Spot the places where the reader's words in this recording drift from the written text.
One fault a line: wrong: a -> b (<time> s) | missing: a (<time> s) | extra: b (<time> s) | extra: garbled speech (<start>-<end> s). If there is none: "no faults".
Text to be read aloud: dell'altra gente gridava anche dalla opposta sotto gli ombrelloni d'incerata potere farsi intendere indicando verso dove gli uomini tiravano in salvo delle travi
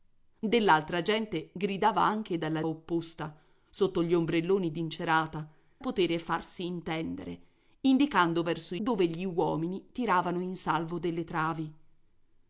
no faults